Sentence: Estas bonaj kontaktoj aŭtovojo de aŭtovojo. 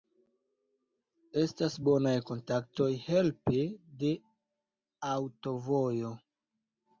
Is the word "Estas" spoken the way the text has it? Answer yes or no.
yes